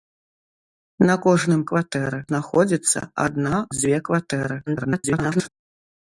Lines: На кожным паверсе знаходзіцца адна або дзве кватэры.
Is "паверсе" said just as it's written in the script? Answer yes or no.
no